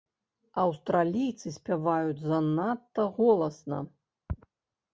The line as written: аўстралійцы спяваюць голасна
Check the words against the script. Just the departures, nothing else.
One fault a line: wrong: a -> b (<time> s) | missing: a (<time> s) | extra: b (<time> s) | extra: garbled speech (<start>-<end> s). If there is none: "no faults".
extra: занадта (2.3 s)